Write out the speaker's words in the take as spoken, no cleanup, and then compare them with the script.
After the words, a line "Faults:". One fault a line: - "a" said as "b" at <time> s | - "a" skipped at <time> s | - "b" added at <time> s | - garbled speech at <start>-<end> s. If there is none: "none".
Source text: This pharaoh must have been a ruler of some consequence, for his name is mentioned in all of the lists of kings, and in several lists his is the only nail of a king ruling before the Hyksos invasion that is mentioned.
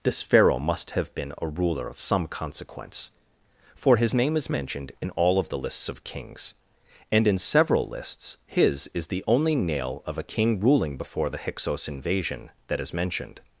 This pharaoh must have been a ruler of some consequence, for his name is mentioned in all of the lists of kings, and in several lists his is the only nail of a king ruling before the Hyksos invasion that is mentioned.
Faults:
none